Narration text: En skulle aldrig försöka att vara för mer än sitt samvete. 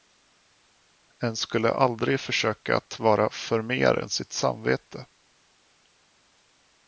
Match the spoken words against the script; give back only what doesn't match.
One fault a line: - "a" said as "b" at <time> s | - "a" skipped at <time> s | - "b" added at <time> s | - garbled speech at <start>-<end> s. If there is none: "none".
none